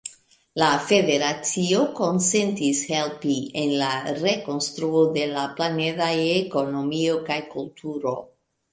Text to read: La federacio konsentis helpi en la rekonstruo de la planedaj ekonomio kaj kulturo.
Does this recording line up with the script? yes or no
yes